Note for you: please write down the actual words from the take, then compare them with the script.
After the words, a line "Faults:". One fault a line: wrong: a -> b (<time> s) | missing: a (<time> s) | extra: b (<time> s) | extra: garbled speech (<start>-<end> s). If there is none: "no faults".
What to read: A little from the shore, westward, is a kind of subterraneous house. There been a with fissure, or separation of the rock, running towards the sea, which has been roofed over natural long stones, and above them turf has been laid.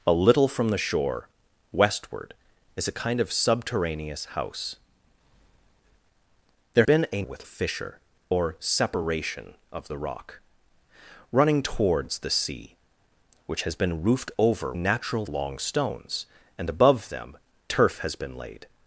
A little from the shore, westward, is a kind of subterraneous house. There been a with fissure, or separation of the rock, running towards the sea, which has been roofed over natural long stones, and above them turf has been laid.
Faults:
no faults